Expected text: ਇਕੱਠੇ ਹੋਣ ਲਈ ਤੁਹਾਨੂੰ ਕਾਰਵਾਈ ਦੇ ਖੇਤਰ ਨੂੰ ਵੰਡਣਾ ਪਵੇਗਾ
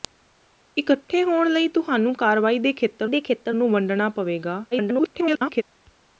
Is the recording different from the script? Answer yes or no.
yes